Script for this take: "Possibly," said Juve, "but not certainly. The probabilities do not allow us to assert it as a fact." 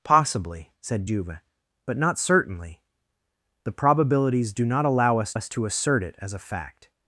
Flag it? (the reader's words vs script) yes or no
yes